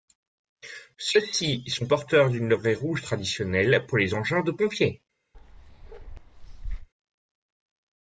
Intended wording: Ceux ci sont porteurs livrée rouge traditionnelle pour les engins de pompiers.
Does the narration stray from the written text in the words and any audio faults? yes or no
yes